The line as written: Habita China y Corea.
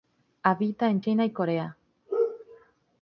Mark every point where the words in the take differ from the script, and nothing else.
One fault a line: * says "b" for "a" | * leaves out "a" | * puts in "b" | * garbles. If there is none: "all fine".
* puts in "en"